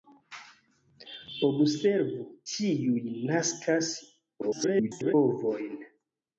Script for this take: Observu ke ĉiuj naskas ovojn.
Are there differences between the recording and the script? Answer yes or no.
yes